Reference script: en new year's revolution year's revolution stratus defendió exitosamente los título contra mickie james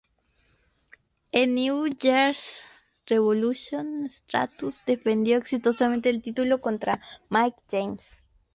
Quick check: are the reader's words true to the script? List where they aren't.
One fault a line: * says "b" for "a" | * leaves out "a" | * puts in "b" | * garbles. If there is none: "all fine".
* leaves out "year's revolution"
* says "el" for "los"